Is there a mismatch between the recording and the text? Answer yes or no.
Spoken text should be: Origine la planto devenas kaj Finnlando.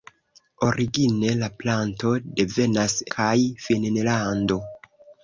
no